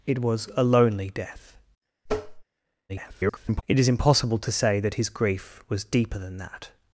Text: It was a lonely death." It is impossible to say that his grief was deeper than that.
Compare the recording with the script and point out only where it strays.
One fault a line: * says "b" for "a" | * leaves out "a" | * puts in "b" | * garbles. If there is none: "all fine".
* garbles